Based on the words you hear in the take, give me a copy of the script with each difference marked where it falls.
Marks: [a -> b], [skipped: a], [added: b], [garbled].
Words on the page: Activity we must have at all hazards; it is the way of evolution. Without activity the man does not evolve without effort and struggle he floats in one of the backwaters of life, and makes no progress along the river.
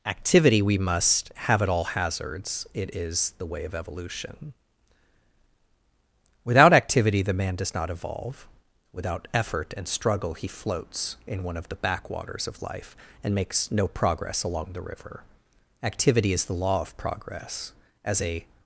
Activity we must have at all hazards; it is the way of evolution. Without activity the man does not evolve without effort and struggle he floats in one of the backwaters of life, and makes no progress along the river. [added: Activity is the law of progress as a]